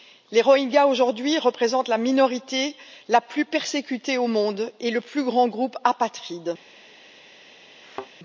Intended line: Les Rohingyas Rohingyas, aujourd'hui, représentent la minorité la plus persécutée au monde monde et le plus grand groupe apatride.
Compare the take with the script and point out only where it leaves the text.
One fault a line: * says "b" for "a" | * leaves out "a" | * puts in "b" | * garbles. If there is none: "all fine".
* leaves out "Rohingyas"
* leaves out "monde"